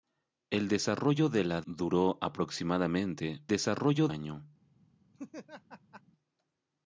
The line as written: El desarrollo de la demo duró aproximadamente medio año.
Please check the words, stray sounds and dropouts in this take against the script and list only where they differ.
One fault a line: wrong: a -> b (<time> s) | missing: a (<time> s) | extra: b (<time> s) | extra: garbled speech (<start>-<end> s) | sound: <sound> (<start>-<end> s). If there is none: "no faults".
missing: demo (1.6 s)
wrong: medio -> desarrollo (3.5 s)
sound: laugh (5.1-6.0 s)